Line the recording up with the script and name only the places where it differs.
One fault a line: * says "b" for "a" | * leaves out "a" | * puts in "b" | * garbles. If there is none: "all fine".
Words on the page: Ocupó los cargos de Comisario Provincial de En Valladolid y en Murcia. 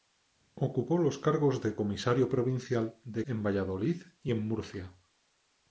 all fine